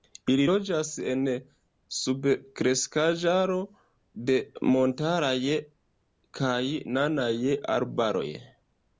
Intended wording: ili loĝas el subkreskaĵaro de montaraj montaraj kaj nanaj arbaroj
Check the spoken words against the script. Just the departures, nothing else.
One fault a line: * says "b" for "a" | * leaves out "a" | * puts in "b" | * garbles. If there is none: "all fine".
* says "en" for "el"
* leaves out "montaraj"